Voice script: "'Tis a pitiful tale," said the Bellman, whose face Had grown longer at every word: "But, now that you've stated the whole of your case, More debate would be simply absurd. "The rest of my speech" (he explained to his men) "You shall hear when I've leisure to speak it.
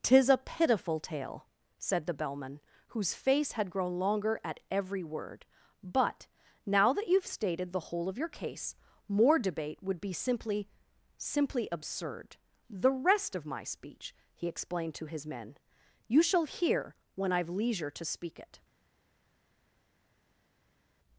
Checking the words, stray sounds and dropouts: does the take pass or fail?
fail